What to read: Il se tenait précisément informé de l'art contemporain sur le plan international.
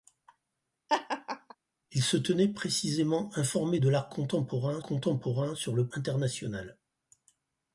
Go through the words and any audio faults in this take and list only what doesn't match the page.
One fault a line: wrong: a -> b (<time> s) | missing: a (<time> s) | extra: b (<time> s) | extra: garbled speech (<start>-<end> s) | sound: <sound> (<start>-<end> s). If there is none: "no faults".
sound: laugh (0.9-1.6 s)
extra: contemporain (4.8 s)
missing: plan (5.9 s)